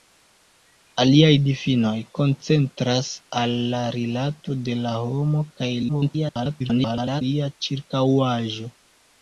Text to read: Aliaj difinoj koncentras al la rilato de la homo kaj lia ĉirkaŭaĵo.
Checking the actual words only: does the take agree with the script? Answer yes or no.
no